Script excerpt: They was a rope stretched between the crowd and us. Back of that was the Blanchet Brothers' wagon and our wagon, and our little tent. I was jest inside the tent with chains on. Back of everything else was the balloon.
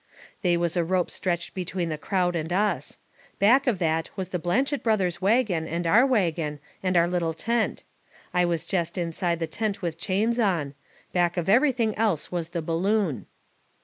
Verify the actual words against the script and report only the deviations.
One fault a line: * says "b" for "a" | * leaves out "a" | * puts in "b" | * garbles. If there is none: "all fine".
all fine